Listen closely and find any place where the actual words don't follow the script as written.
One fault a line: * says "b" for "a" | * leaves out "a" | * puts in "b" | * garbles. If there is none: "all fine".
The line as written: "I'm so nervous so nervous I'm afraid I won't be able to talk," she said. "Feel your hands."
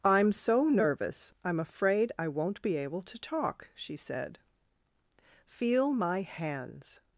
* leaves out "so nervous"
* says "my" for "your"